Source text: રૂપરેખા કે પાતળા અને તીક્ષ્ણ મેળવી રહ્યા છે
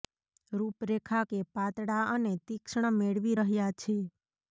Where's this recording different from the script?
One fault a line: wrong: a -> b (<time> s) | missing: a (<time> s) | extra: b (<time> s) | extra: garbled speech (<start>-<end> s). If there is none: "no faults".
no faults